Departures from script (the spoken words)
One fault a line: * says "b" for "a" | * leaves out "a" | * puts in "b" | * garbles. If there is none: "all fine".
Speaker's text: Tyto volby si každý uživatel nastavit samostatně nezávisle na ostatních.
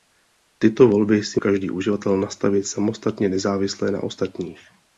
all fine